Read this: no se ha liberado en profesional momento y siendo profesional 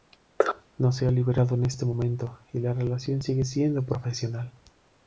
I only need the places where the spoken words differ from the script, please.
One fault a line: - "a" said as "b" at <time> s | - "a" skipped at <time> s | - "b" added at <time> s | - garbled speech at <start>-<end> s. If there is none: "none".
- "profesional" said as "este" at 1.6 s
- "la relación sigue" added at 2.6 s